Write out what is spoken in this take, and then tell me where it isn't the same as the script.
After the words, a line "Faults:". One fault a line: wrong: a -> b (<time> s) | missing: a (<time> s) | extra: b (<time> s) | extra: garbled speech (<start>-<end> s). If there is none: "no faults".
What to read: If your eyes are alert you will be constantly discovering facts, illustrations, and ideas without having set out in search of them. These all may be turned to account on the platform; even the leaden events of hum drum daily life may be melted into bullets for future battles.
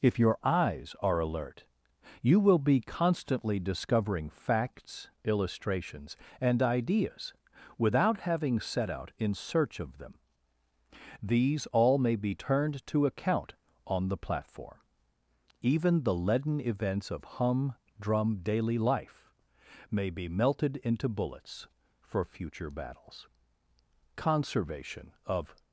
If your eyes are alert you will be constantly discovering facts, illustrations, and ideas without having set out in search of them. These all may be turned to account on the platform; even the leaden events of hum drum daily life may be melted into bullets for future battles. Conservation of
Faults:
extra: Conservation of (24.1 s)